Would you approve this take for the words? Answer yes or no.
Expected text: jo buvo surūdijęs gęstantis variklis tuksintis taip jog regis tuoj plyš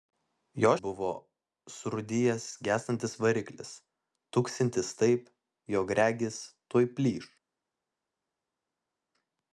yes